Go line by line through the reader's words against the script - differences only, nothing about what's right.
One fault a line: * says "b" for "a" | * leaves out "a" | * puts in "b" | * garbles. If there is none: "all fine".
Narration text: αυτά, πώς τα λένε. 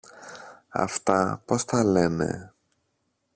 all fine